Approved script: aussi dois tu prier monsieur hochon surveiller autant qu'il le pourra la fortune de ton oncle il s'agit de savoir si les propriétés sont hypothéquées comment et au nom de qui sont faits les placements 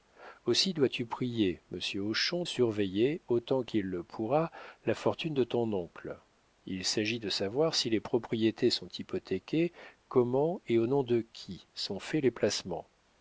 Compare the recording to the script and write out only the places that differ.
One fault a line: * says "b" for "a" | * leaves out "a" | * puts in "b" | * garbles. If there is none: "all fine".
all fine